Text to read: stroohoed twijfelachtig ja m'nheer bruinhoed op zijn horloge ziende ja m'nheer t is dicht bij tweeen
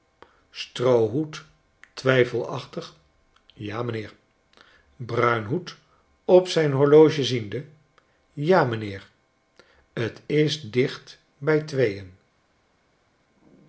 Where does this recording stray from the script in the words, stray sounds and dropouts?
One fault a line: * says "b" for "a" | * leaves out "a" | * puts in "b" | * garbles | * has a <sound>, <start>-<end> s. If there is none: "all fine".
all fine